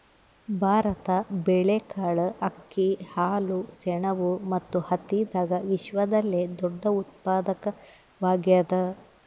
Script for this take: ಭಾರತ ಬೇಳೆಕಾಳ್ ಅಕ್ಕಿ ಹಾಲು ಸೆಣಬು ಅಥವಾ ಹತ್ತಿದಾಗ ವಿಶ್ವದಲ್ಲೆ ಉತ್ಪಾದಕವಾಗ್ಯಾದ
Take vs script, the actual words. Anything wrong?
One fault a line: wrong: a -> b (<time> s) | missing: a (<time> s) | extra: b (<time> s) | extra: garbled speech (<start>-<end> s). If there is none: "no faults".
wrong: ಅಥವಾ -> ಮತ್ತು (4.5 s)
extra: ದೊಡ್ಡ (6.6 s)